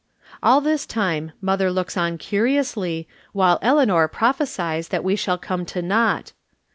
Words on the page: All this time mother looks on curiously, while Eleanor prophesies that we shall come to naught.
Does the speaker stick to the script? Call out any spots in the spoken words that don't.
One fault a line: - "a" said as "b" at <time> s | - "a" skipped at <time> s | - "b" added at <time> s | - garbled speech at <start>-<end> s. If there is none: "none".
none